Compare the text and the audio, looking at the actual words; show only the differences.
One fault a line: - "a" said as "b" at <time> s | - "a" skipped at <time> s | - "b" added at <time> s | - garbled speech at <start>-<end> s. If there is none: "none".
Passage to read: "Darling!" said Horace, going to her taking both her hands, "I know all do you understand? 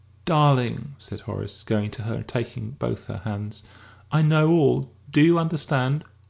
- "and" added at 2.1 s